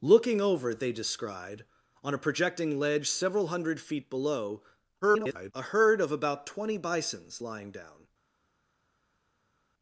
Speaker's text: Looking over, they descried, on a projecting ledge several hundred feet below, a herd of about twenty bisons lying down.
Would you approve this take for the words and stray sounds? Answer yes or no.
no